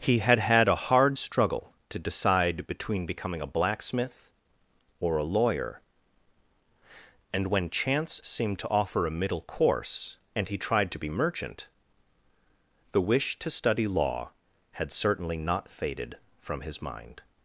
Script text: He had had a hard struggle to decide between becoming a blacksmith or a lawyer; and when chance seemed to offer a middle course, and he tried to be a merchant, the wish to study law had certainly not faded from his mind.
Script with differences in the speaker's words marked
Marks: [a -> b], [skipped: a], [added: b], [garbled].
He had had a hard struggle to decide between becoming a blacksmith or a lawyer; and when chance seemed to offer a middle course, and he tried to be [skipped: a] merchant, the wish to study law had certainly not faded from his mind.